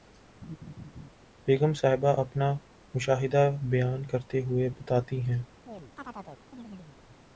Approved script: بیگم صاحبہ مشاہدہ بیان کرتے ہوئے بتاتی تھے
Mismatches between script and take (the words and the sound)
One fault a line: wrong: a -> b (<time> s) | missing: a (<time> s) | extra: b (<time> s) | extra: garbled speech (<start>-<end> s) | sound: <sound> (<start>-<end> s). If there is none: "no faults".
sound: laugh (0.4-1.1 s)
extra: اپنا (2.2 s)
wrong: تھے -> ہیں (5.2 s)
sound: chirp (5.7-7.0 s)